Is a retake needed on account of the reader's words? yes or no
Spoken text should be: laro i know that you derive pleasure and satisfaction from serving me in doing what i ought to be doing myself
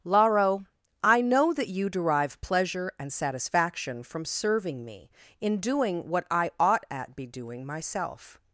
yes